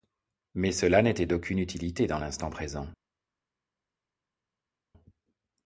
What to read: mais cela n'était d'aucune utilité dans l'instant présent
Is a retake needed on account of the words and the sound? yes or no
no